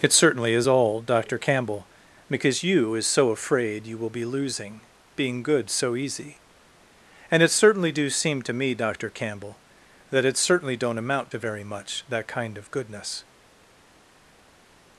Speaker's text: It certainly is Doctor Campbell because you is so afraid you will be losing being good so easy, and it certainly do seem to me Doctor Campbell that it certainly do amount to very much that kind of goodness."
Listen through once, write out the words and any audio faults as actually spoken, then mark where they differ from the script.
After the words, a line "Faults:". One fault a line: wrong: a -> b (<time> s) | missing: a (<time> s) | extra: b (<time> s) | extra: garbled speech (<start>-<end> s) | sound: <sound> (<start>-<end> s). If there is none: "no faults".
It certainly is all Doctor Campbell because you is so afraid you will be losing being good so easy, and it certainly do seem to me Doctor Campbell that it certainly don't amount to very much that kind of goodness."
Faults:
extra: all (0.6 s)
wrong: do -> don't (10.8 s)